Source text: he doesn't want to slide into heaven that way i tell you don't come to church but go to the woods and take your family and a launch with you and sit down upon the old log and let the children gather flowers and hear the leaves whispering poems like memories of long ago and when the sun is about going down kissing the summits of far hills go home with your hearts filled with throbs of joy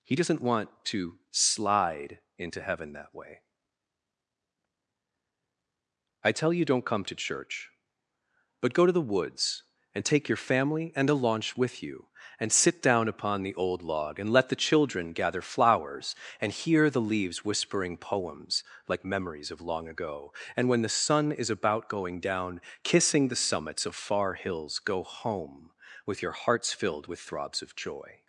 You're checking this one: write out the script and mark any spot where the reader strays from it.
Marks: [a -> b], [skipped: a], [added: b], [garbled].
he doesn't want to slide into heaven that way i tell you don't come to church but go to the woods and take your family and a launch with you and sit down upon the old log and let the children gather flowers and hear the leaves whispering poems like memories of long ago and when the sun is about going down kissing the summits of far hills go home with your hearts filled with throbs of joy